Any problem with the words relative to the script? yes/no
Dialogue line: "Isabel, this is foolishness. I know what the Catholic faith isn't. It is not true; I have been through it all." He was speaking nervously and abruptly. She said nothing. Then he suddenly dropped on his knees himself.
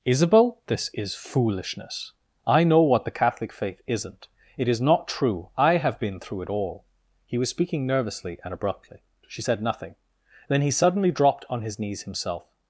no